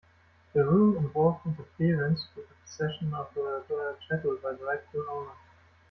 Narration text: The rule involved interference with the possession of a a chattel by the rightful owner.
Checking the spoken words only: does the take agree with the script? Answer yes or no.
yes